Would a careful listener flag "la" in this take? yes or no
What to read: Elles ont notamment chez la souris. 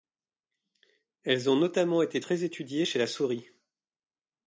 no